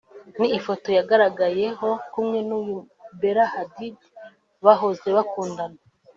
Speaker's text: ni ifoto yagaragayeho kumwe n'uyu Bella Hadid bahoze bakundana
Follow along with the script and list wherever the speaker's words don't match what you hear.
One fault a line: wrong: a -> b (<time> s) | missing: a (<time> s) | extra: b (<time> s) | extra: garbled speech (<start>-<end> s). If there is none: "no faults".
no faults